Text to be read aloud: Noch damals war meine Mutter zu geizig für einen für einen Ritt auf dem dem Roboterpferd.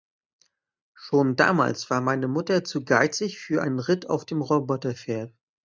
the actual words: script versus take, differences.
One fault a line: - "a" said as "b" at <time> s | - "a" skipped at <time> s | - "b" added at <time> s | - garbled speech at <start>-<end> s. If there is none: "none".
- "Noch" said as "Schon" at 0.9 s
- "für einen" skipped at 3.8 s
- "dem" skipped at 4.4 s